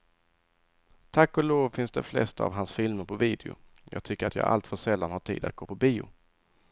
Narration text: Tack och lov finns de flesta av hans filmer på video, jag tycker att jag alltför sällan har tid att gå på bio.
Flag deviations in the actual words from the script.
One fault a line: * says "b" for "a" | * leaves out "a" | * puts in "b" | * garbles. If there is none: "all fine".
all fine